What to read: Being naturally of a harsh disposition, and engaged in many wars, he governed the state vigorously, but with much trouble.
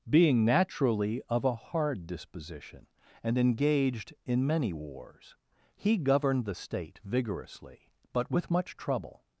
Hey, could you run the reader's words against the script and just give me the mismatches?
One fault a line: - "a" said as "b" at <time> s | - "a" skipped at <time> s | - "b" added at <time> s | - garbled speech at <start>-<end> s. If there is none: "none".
- "harsh" said as "hard" at 1.6 s